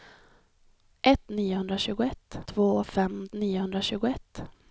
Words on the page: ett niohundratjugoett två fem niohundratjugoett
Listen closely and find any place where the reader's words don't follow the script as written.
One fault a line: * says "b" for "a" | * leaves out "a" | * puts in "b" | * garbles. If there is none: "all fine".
all fine